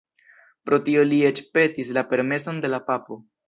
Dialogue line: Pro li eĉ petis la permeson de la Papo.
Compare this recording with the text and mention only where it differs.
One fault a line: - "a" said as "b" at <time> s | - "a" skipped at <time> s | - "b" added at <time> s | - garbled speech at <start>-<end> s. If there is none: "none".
- "tio" added at 0.9 s